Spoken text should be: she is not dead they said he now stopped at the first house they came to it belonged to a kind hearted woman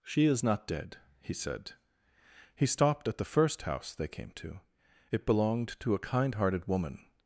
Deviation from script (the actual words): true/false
true